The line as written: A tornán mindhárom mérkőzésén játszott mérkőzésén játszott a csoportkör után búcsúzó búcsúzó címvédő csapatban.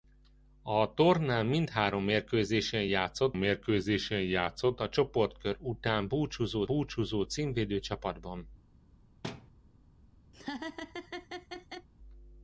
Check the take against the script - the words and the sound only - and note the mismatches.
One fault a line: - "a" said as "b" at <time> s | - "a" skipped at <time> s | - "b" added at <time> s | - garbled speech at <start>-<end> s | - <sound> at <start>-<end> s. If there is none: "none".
- thud at 9.2-9.5 s
- laugh at 10.3-11.9 s